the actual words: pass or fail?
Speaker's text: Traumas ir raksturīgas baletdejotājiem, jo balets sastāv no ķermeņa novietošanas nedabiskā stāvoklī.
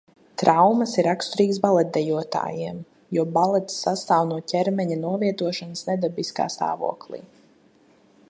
pass